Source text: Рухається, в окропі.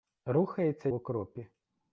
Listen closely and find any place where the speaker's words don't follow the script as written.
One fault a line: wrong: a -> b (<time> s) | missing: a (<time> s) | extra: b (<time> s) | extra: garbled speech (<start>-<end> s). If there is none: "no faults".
no faults